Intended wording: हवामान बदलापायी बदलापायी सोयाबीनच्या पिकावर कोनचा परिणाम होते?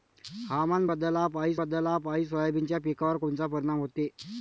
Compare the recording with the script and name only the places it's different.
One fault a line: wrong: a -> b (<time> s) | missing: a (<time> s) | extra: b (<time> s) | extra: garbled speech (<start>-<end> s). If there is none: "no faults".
no faults